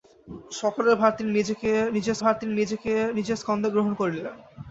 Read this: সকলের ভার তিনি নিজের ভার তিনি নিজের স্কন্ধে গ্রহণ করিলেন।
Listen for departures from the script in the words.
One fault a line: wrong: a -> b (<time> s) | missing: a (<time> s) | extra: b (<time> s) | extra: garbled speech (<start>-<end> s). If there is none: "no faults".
no faults